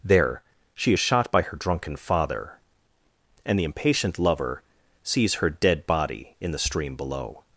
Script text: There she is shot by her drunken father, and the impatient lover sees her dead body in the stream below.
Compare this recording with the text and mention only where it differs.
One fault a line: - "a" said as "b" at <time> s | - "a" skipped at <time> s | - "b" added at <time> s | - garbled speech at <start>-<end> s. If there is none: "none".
none